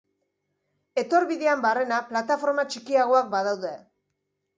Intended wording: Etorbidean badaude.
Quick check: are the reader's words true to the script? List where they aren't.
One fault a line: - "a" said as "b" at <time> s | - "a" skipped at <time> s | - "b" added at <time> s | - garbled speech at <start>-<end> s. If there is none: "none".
- "barrena plataforma txikiagoak" added at 1.6 s